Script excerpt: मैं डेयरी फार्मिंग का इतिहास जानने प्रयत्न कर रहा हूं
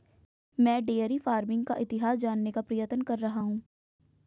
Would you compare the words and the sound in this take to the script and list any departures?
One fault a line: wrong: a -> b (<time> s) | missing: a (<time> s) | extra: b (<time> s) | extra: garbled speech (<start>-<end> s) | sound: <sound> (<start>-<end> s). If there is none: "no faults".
extra: का (2.5 s)